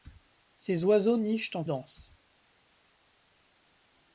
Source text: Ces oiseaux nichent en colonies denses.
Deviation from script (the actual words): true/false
true